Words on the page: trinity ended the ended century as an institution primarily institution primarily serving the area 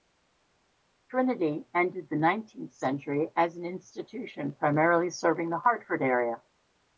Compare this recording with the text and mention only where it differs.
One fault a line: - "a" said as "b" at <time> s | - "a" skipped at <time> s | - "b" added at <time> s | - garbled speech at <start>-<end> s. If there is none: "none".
- "ended" said as "nineteenth" at 2.1 s
- "institution primarily" skipped at 5.1 s
- "hartford" added at 5.6 s